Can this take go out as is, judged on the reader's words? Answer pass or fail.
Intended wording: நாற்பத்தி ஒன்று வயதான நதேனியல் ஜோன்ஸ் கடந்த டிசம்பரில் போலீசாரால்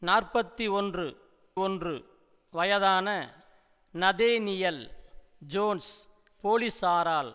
fail